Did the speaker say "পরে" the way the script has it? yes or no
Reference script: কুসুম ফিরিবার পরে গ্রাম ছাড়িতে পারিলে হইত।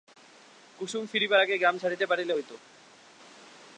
no